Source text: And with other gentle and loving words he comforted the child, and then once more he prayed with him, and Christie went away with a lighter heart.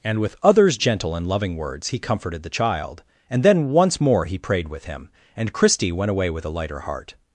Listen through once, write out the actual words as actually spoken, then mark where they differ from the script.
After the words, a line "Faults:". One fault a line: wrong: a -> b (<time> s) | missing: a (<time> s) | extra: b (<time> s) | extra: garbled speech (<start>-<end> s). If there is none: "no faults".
And with others gentle and loving words he comforted the child, and then once more he prayed with him, and Christie went away with a lighter heart.
Faults:
wrong: other -> others (0.4 s)